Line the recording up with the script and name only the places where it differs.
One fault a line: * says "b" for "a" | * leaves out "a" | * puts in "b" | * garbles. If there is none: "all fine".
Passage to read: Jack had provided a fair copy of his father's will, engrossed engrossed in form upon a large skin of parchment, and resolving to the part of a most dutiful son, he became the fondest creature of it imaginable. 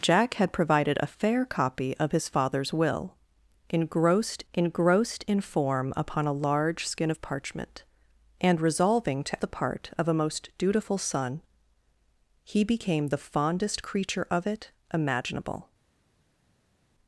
all fine